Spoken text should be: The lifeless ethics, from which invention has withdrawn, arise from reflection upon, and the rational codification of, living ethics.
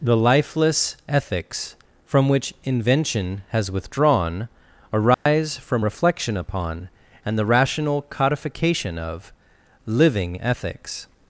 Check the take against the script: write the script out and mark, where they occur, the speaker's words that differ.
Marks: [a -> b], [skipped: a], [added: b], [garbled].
The lifeless ethics, from which invention has withdrawn, arise from reflection upon, and the rational codification of, living ethics.